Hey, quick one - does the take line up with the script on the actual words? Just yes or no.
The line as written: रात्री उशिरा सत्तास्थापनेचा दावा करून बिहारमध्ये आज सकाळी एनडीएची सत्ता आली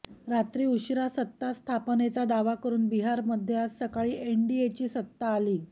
yes